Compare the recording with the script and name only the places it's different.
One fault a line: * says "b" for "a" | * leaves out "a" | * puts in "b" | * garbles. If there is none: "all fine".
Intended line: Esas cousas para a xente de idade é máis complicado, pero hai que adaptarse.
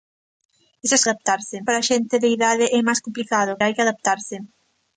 * says "adaptarse" for "cousas"
* leaves out "pero"